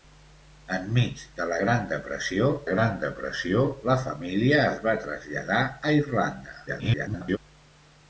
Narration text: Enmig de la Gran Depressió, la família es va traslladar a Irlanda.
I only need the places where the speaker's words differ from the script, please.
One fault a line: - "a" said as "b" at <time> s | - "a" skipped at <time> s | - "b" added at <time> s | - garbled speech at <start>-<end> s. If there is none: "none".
- "Gran Depressió" added at 2.7 s
- garbled speech at 6.7-7.4 s